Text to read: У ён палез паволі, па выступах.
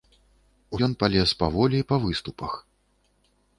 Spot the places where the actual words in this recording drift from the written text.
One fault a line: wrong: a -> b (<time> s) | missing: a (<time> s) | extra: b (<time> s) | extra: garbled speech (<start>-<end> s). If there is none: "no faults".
no faults